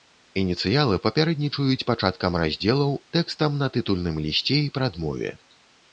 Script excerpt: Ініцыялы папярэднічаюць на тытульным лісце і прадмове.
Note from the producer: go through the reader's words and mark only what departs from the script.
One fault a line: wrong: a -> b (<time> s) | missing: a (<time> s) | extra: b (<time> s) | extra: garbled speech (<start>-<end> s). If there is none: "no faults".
extra: пачаткам раздзелаў тэкстам (1.9 s)